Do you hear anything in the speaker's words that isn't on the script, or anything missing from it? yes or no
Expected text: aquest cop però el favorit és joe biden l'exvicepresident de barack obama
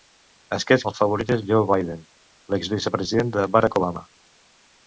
yes